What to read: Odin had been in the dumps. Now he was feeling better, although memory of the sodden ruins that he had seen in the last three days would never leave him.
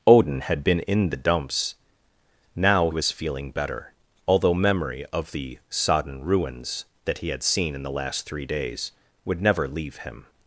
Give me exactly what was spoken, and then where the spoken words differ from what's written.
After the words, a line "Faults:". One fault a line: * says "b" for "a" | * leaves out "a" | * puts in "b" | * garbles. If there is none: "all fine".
Odin had been in the dumps. Now was feeling better, although memory of the sodden ruins that he had seen in the last three days would never leave him.
Faults:
* leaves out "he"